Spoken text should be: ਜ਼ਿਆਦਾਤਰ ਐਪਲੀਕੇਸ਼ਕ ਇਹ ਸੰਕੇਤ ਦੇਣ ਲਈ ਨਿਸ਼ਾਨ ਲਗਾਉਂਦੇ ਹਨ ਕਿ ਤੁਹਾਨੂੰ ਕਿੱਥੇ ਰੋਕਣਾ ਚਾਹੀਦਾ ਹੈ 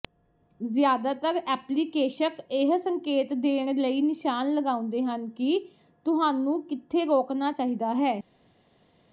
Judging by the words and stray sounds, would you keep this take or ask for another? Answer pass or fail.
pass